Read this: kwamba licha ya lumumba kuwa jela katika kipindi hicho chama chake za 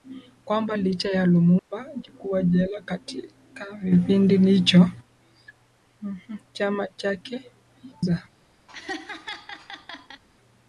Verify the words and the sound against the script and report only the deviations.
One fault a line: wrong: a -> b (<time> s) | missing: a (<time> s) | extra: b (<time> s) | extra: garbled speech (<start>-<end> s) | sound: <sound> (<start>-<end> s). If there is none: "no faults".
sound: dropout (1.6-1.7 s)
sound: laugh (8.7-10.2 s)